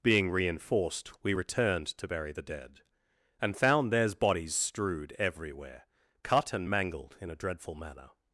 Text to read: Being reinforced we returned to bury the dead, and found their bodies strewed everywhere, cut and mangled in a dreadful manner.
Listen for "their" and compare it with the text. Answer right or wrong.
wrong